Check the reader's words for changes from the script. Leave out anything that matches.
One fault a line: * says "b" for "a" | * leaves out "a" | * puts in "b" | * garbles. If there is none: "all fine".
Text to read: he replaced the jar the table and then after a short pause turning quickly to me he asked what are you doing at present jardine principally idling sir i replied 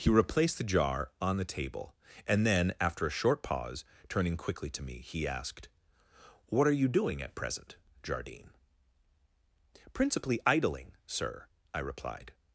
* puts in "on"